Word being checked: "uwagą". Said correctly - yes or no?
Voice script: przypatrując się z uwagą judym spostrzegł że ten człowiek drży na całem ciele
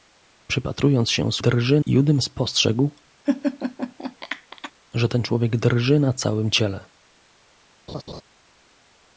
no